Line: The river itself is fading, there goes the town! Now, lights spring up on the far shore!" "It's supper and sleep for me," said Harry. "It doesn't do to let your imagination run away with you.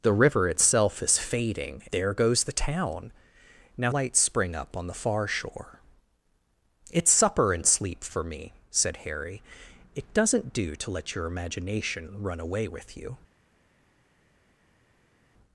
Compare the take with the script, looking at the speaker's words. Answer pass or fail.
pass